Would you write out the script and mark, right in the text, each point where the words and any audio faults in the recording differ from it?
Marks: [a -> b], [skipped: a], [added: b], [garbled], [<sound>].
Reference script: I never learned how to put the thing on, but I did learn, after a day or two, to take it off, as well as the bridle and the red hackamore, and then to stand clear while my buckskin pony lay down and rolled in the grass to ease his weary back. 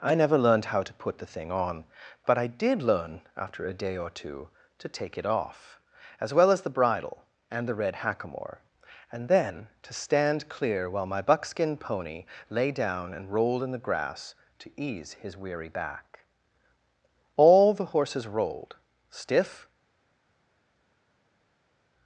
I never learned how to put the thing on, but I did learn, after a day or two, to take it off, as well as the bridle and the red hackamore, and then to stand clear while my buckskin pony lay down and rolled in the grass to ease his weary back. [added: All the horses rolled stiff]